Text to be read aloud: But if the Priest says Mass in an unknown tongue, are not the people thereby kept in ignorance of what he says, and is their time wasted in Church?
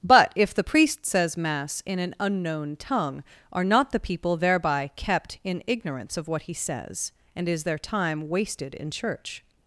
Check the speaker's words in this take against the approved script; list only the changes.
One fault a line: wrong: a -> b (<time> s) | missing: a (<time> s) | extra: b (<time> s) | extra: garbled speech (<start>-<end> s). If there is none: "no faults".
no faults